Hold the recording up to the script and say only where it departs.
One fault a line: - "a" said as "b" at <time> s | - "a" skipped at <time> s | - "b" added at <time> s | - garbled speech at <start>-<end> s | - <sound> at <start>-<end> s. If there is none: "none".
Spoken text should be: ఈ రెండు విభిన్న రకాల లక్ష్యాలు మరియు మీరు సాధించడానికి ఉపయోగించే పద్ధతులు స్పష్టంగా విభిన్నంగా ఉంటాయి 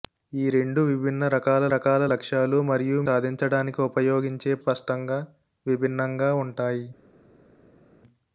- "రకాల" added at 1.7 s
- "మీరు" skipped at 3.0 s
- "పద్ధతులు" skipped at 4.5 s